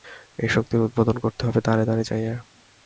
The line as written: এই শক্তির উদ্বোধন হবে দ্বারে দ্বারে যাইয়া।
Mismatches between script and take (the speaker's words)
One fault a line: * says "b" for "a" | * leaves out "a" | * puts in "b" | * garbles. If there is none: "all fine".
* puts in "করতে"